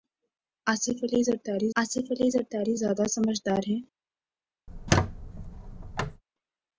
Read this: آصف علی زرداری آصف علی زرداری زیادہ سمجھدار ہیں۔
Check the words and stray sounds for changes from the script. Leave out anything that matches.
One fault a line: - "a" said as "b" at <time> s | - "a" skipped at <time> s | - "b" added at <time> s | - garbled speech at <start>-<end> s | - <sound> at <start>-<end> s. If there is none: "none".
- squeak at 4.7-6.2 s